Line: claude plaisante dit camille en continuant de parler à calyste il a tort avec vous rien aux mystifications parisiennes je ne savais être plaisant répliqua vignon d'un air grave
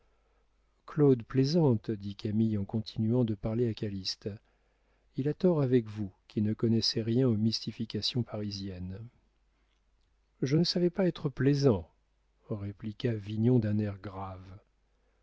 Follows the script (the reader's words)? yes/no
no